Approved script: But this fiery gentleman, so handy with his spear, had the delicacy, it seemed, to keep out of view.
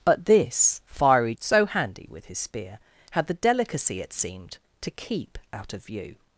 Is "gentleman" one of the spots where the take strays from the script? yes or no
yes